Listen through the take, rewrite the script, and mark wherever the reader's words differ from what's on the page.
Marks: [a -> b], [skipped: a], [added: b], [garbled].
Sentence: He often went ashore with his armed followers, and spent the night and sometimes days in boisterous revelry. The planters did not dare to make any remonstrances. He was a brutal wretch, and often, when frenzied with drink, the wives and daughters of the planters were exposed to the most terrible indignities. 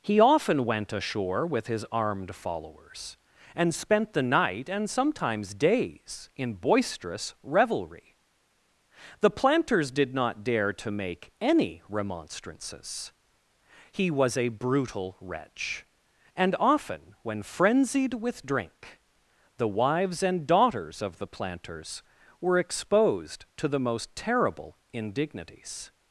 He often went ashore with his armed followers, and spent the night and sometimes days in boisterous revelry. The planters did not dare to make any remonstrances. He was a brutal wretch, and often, when frenzied with drink, the wives and daughters of the planters were exposed to the most terrible indignities.